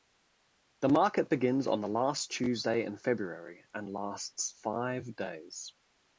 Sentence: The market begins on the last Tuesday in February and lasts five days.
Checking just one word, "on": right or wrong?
right